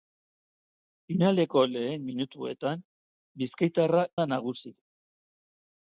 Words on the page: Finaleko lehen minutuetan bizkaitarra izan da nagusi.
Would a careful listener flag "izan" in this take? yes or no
yes